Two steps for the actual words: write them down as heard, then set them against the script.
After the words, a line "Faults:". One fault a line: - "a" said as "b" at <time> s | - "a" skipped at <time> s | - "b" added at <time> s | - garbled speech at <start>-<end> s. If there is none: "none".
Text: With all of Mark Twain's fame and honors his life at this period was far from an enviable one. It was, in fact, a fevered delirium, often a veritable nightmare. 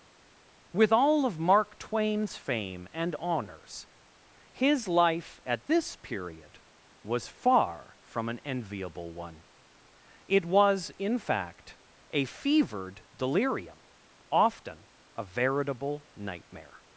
With all of Mark Twain's fame and honors his life at this period was far from an enviable one. It was, in fact, a fevered delirium, often a veritable nightmare.
Faults:
none